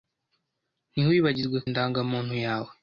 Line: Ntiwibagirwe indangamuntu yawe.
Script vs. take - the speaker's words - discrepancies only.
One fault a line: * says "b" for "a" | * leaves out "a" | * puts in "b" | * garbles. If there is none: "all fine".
all fine